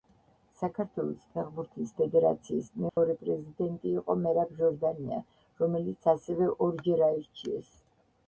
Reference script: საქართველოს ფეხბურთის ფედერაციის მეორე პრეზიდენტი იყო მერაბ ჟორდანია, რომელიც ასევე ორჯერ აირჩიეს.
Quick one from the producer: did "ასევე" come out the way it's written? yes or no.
yes